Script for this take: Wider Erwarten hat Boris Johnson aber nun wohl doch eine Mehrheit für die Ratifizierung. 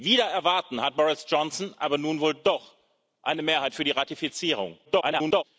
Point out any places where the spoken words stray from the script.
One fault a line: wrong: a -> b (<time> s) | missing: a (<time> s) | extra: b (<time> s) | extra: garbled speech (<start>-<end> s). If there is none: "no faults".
extra: garbled speech (4.8-5.4 s)